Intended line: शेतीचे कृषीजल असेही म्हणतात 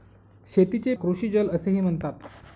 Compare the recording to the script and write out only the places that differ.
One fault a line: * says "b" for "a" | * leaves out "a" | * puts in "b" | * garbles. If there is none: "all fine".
all fine